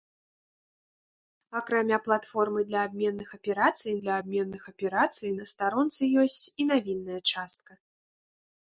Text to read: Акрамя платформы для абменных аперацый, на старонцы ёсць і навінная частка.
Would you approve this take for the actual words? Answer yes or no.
no